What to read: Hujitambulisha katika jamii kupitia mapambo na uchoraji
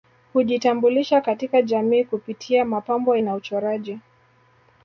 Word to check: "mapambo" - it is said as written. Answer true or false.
true